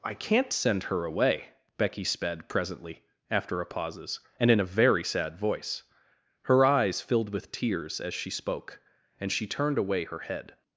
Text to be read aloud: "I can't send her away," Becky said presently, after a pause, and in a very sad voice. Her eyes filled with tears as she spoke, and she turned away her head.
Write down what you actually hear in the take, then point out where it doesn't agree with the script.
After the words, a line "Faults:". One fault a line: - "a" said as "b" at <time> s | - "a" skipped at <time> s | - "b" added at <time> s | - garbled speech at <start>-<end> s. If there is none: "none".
"I can't send her away," Becky sped presently, after a pauses, and in a very sad voice. Her eyes filled with tears as she spoke, and she turned away her head.
Faults:
- "said" said as "sped" at 2.0 s
- "pause" said as "pauses" at 3.6 s